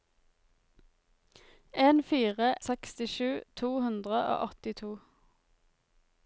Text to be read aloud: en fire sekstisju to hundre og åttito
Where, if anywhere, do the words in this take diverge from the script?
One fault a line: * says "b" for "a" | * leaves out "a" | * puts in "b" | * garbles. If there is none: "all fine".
all fine